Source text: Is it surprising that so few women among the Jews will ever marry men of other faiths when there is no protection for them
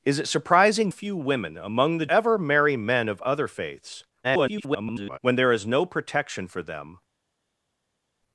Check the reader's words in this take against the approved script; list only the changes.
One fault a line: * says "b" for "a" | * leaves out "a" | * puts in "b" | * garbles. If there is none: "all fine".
* leaves out "that so"
* leaves out "Jews will"
* garbles